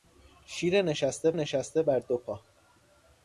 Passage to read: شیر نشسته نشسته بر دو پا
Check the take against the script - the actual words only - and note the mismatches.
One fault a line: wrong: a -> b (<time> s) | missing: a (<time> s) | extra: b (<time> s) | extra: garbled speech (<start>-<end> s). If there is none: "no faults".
no faults